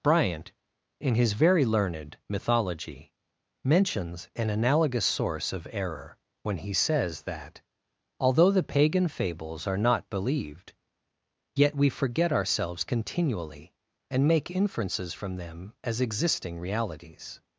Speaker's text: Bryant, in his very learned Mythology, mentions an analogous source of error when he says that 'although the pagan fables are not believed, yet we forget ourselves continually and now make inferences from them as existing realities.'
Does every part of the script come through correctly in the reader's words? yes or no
no